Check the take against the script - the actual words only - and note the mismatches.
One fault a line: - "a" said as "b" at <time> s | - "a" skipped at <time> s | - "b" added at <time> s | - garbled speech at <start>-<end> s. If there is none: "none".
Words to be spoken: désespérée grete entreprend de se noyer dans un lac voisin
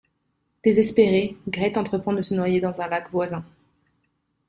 none